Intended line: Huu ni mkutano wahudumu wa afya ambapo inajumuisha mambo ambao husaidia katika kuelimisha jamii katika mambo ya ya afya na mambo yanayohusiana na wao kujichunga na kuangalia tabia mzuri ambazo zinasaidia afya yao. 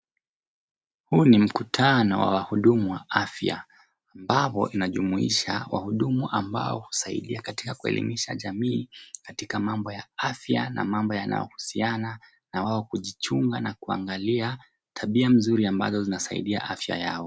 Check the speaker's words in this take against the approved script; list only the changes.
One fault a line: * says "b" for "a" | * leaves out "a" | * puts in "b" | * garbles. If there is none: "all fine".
* puts in "wa"
* says "wahudumu" for "mambo"
* leaves out "ya"